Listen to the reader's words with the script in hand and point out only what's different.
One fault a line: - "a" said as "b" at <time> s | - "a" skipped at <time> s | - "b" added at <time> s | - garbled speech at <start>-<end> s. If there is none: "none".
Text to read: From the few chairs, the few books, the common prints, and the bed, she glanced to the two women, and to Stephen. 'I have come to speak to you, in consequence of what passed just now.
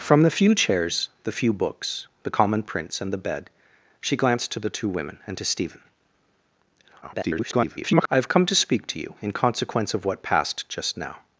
- garbled speech at 7.0-8.1 s